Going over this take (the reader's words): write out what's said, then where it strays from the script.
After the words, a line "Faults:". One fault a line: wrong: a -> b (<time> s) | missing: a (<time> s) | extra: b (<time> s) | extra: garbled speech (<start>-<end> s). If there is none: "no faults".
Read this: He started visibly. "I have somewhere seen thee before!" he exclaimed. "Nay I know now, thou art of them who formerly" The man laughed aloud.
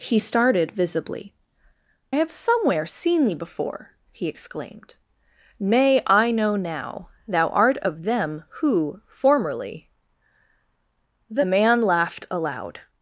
He started visibly. "have somewhere seen thee before!" he exclaimed. "Nay I know now, thou art of them who formerly" The man laughed aloud.
Faults:
missing: I (1.3 s)